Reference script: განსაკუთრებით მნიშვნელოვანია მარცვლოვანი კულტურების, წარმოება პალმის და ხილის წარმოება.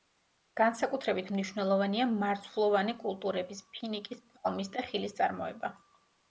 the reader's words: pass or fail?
fail